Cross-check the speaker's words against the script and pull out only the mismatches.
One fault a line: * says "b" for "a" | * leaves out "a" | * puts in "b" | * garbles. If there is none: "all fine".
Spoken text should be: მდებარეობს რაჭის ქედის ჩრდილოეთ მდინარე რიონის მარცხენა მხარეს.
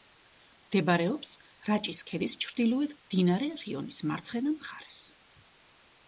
all fine